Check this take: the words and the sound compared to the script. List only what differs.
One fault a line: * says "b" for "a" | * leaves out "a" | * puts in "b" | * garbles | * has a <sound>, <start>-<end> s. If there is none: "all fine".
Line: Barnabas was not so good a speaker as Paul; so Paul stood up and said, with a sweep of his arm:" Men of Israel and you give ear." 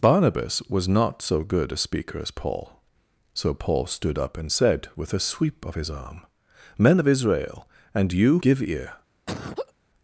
* has a laugh, 9.3-9.7 s